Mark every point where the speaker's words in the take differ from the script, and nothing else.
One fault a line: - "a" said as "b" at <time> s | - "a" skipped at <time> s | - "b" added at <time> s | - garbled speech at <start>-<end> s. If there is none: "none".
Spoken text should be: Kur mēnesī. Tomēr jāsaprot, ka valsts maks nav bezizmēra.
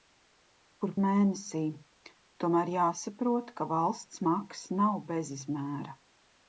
none